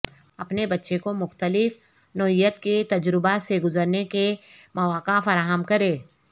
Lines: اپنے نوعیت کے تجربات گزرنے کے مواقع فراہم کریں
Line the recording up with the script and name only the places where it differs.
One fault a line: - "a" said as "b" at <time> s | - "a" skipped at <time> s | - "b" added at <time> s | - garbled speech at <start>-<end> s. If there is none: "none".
- "بچے کو مختلف" added at 0.7 s
- "سے" added at 3.4 s